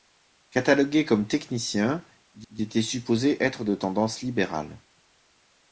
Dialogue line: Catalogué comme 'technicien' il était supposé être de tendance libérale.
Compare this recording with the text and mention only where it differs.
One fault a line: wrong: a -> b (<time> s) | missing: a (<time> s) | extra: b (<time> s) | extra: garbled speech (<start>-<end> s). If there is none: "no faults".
extra: il (2.5 s)